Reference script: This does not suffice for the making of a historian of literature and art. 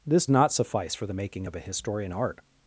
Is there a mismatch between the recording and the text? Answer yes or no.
yes